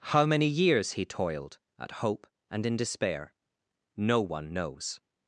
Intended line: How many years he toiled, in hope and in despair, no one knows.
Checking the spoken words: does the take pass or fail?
fail